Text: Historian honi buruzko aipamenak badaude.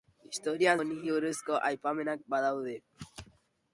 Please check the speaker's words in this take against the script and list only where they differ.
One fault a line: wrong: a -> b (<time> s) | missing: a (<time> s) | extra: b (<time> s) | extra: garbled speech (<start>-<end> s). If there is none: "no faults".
no faults